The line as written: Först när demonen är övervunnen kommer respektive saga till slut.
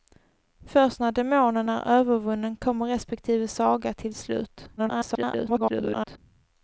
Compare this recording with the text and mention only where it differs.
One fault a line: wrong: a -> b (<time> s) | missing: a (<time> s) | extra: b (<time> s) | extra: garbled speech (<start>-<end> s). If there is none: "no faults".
extra: garbled speech (4.8-6.2 s)